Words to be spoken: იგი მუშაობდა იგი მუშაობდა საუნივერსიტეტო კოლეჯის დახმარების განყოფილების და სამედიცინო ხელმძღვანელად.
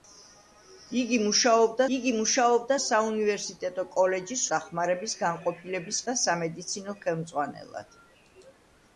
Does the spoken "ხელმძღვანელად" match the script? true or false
true